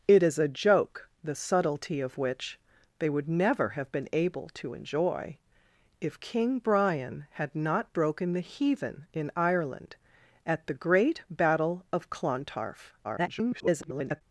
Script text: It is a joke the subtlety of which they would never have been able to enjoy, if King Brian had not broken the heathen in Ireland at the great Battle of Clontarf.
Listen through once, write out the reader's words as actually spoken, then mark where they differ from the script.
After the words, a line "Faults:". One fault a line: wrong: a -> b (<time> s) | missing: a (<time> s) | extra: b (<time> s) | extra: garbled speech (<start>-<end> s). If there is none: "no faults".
It is a joke the subtlety of which they would never have been able to enjoy, if King Brian had not broken the heathen in Ireland at the great Battle of Clontarf. [garbled]
Faults:
extra: garbled speech (13.0-14.2 s)